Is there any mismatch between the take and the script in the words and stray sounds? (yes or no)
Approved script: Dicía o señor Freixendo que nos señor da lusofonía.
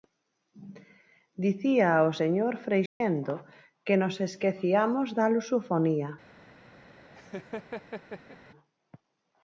yes